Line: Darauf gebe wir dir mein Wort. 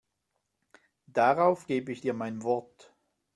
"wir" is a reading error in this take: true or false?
true